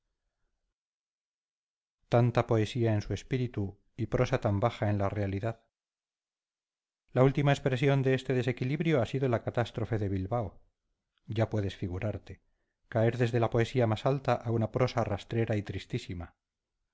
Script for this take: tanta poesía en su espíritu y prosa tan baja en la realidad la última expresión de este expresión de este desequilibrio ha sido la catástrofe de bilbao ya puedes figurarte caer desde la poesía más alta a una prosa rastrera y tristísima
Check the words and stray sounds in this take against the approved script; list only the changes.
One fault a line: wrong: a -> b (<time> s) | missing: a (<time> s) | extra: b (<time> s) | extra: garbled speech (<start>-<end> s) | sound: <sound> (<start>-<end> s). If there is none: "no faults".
missing: expresión de este (8.3 s)